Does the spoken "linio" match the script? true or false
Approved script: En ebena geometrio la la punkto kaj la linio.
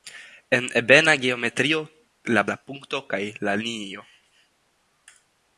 true